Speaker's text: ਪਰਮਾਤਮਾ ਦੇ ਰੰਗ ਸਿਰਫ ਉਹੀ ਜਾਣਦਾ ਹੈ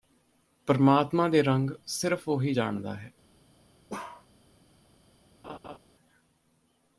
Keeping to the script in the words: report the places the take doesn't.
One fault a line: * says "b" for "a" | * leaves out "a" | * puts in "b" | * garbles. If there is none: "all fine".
all fine